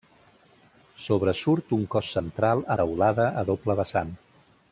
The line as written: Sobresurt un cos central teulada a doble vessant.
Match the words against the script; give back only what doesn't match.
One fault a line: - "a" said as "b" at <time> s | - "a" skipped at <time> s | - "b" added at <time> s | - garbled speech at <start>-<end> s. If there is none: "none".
none